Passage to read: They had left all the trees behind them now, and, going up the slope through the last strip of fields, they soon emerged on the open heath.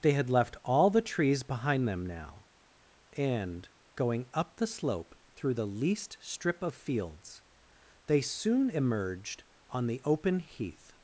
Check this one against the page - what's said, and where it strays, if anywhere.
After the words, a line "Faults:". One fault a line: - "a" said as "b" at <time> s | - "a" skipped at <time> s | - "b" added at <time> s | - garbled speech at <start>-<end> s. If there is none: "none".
They had left all the trees behind them now, and, going up the slope through the least strip of fields, they soon emerged on the open heath.
Faults:
- "last" said as "least" at 5.7 s